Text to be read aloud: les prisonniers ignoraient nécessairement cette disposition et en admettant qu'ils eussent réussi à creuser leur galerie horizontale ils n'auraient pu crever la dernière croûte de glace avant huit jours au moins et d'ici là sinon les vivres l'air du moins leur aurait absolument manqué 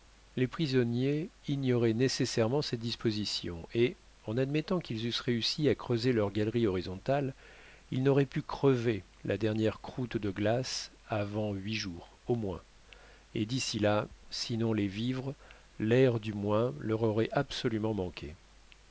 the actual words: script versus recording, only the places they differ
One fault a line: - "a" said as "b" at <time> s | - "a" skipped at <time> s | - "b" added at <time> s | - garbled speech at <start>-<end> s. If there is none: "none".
none